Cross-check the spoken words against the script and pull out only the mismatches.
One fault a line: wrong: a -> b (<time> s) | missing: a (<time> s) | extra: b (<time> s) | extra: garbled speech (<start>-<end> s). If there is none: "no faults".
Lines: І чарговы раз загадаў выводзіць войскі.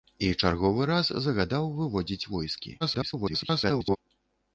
extra: garbled speech (2.8-4.0 s)